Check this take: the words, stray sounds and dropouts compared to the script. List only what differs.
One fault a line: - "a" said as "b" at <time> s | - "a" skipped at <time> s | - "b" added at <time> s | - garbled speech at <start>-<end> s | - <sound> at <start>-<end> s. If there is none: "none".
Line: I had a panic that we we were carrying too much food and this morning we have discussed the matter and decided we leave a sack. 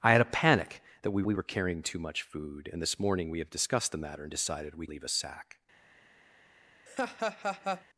- laugh at 6.9-7.8 s